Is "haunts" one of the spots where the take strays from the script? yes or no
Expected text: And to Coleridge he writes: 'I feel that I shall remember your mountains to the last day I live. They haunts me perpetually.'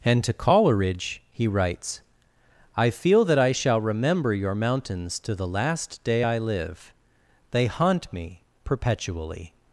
yes